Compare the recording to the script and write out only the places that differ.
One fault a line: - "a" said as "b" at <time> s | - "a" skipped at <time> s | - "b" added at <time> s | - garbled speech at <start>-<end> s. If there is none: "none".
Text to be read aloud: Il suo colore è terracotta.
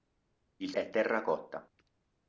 - "suo colore" skipped at 0.7 s